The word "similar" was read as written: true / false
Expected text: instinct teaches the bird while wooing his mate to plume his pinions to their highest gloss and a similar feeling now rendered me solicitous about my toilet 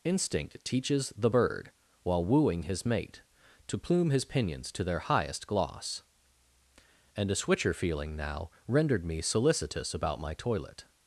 false